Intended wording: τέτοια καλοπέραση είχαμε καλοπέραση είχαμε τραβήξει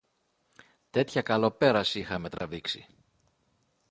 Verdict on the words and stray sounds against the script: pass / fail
fail